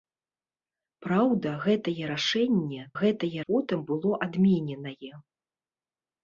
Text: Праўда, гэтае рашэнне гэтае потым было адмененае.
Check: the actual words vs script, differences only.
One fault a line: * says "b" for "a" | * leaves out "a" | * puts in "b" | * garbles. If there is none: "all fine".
all fine